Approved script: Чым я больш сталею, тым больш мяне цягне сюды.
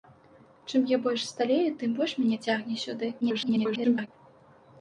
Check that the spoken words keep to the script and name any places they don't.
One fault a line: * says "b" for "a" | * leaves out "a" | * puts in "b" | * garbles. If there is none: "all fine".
* garbles